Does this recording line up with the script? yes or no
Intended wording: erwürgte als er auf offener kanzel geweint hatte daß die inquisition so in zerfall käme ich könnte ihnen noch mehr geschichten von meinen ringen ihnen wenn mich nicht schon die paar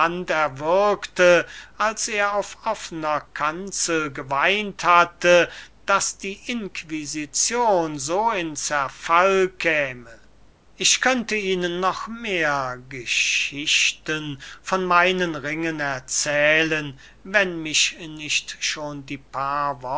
no